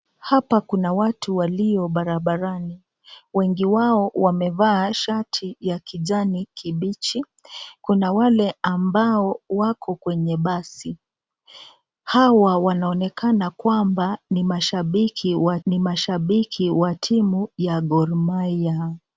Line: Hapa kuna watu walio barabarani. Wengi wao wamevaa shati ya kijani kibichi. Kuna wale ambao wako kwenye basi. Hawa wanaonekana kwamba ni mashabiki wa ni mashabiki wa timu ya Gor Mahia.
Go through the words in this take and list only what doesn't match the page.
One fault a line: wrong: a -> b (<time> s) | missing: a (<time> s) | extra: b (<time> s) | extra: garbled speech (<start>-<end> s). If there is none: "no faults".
no faults